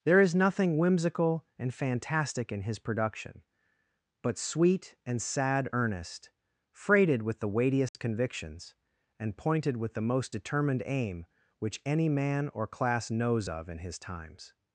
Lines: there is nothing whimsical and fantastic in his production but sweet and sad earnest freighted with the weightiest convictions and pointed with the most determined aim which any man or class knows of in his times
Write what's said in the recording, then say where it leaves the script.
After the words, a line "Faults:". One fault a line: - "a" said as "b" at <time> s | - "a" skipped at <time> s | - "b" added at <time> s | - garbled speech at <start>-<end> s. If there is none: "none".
there is nothing whimsical and fantastic in his production but sweet and sad earnest freighted with the weightiest convictions and pointed with the most determined aim which any man or class knows of in his times
Faults:
none